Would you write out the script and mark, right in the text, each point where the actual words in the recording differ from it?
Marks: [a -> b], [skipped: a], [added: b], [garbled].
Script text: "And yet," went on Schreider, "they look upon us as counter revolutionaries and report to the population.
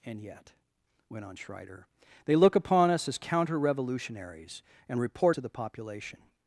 "And yet," went on Schreider, "they look upon us as counter revolutionaries and report to the population.